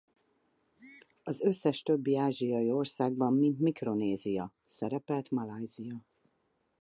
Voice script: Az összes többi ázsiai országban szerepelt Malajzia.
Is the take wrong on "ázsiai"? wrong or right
right